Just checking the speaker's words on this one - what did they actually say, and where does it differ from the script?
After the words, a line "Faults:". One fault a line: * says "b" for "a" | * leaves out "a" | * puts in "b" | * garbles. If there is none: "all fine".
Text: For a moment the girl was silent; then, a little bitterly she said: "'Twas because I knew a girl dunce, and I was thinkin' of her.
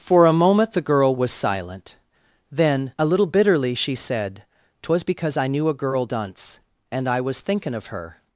For a moment the girl was silent; then, a little bitterly she said: "'Twas because I knew a girl dunce, and I was thinkin' of her.
Faults:
all fine